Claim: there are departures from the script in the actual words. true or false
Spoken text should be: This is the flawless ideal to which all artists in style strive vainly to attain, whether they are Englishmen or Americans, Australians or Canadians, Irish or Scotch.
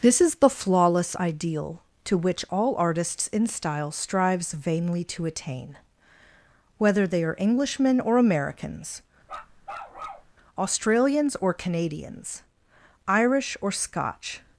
true